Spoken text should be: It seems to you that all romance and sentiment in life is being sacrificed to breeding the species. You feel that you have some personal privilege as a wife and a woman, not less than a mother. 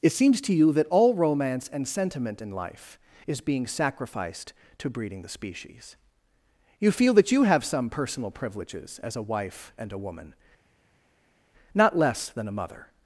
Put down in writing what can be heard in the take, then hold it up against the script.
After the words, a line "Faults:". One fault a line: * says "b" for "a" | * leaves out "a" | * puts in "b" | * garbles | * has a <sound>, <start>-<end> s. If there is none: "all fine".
It seems to you that all romance and sentiment in life is being sacrificed to breeding the species. You feel that you have some personal privileges as a wife and a woman, not less than a mother.
Faults:
* says "privileges" for "privilege"